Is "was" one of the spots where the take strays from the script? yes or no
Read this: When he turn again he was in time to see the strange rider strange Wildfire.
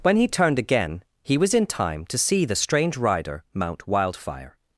no